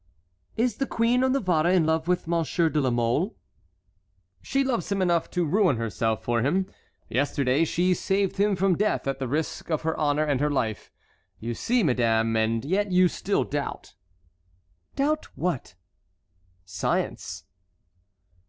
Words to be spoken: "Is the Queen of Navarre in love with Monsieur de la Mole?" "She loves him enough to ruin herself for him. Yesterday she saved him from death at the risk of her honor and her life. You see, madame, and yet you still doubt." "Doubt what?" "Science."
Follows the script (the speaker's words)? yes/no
yes